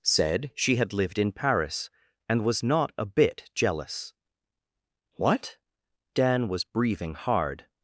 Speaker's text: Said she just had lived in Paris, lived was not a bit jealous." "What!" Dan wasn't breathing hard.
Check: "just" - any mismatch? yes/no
yes